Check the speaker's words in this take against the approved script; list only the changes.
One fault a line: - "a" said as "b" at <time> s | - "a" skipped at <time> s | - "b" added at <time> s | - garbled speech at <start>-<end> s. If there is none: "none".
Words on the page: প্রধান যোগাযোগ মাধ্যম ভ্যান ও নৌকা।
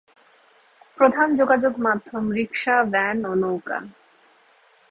- "রিক্সা" added at 2.3 s